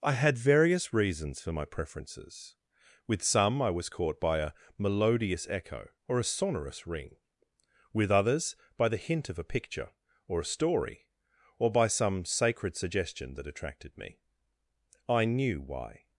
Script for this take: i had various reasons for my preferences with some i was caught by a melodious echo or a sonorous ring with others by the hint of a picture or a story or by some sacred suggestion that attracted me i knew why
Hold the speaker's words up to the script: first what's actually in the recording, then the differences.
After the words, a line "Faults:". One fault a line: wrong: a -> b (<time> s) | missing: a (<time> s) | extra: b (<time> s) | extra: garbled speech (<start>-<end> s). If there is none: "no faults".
i had various reasons for my preferences with some i was caught by a melodious echo or a sonorous ring with others by the hint of a picture or a story or by some sacred suggestion that attracted me i knew why
Faults:
no faults